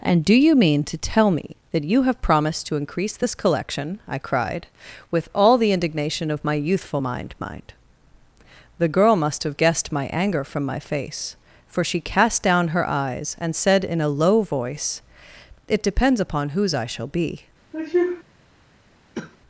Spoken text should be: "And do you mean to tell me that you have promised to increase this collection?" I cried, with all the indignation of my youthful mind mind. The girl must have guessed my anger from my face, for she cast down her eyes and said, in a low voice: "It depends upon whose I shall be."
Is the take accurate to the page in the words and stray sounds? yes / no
no